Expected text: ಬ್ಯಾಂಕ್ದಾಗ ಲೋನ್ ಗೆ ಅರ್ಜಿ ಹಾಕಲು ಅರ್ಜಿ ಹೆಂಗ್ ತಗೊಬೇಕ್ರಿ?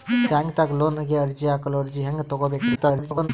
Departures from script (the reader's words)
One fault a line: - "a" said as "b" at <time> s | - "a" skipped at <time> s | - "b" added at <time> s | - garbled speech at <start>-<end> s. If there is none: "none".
- garbled speech at 2.7-3.3 s